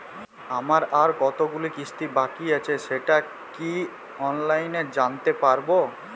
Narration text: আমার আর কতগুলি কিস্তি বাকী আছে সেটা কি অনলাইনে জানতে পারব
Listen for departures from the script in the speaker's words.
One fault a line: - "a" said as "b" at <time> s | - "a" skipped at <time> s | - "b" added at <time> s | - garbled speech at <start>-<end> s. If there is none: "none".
none